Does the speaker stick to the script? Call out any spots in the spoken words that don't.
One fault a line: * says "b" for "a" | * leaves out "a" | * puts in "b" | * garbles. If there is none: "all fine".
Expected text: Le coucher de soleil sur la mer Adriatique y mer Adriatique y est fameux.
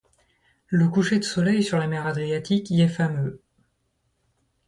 * leaves out "mer Adriatique y"